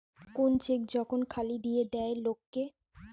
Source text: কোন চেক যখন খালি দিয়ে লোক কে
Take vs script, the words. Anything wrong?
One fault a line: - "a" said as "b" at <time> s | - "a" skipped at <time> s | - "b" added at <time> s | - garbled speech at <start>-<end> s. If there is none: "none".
- "দেয়" added at 1.9 s